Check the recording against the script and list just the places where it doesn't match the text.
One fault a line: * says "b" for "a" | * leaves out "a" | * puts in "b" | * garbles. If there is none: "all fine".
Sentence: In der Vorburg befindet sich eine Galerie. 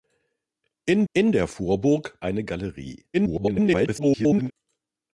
* puts in "in"
* leaves out "befindet sich"
* garbles